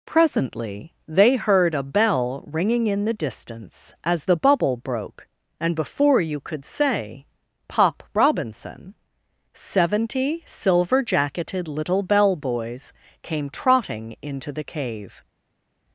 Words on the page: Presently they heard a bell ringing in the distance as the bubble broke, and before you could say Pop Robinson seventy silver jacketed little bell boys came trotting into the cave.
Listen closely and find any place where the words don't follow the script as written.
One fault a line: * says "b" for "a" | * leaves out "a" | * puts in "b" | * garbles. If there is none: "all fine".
all fine